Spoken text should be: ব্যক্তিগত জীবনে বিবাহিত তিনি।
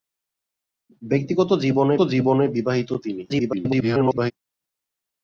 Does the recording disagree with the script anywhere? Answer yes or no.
yes